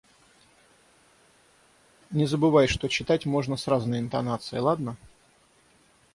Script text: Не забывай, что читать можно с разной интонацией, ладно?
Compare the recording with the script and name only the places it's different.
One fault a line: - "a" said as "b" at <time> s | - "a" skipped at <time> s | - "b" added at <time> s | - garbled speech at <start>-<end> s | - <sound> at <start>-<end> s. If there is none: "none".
none